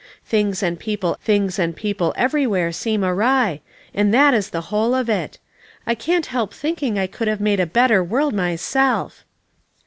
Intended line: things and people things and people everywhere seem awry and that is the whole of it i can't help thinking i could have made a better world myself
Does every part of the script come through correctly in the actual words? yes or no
yes